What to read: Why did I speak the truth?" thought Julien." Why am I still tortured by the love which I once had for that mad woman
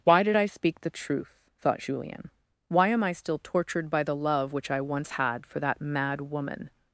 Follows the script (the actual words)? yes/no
yes